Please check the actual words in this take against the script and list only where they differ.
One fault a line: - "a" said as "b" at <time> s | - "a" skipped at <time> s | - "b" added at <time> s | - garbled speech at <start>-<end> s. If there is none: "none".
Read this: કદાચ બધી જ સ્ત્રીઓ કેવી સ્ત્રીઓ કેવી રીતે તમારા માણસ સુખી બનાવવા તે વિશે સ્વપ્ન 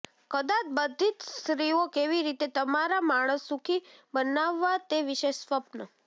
- "સ્ત્રીઓ કેવી" skipped at 2.2 s